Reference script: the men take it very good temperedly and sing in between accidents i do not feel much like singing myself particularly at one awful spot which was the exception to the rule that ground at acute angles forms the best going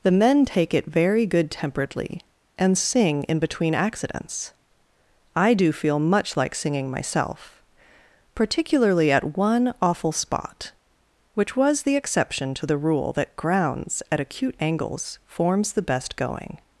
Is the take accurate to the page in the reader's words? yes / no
no